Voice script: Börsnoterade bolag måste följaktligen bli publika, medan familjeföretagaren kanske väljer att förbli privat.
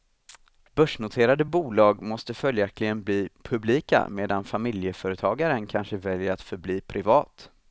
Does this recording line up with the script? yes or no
yes